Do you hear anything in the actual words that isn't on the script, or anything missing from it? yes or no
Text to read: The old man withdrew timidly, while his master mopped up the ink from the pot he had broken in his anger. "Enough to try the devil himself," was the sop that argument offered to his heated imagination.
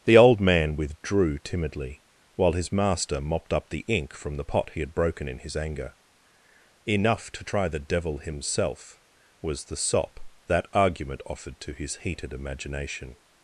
no